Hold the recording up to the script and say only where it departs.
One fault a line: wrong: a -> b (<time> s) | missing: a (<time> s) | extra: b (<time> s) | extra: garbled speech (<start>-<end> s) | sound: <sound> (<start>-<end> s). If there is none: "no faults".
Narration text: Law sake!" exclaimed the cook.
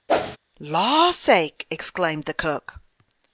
sound: whoosh (0.1-0.4 s)